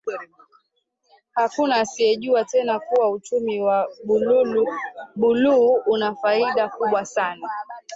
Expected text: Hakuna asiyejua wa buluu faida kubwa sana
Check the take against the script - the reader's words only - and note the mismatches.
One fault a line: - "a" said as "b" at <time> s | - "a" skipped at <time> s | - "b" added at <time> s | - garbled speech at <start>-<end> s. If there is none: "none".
- "tena kuwa uchumi" added at 2.5 s
- "una" added at 5.8 s